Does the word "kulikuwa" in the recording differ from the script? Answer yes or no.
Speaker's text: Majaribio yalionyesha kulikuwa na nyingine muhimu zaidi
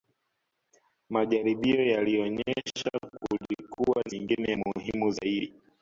no